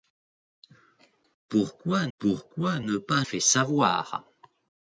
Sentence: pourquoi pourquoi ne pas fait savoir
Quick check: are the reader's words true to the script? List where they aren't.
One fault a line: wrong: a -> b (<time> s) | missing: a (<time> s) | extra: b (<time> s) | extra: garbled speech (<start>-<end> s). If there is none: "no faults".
no faults